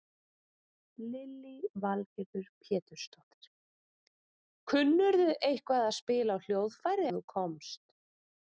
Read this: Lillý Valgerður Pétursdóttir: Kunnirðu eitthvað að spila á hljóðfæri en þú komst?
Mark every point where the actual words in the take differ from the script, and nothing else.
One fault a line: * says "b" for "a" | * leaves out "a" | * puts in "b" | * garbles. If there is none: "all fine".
all fine